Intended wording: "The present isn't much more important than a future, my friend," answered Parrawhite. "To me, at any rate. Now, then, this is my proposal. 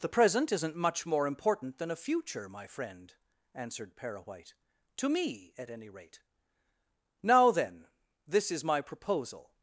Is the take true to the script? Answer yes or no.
yes